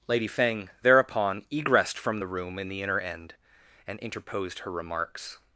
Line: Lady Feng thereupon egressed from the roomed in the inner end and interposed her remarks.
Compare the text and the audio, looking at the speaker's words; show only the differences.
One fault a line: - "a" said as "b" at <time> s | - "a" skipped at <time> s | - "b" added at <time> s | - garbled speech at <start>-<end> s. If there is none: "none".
- "roomed" said as "room" at 2.3 s